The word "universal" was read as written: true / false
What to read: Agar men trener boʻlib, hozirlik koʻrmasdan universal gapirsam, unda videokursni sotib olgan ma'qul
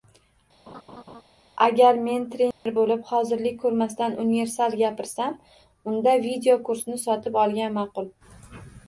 true